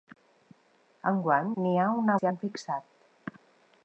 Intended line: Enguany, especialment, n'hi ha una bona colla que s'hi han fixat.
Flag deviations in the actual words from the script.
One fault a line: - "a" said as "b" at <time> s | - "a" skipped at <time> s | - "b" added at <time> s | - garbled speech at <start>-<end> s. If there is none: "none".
- "especialment" skipped at 1.5 s
- "bona colla que" skipped at 2.2 s